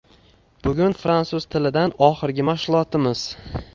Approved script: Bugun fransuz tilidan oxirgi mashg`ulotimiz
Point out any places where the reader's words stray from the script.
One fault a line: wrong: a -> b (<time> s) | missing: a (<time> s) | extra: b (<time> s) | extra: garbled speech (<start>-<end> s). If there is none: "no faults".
no faults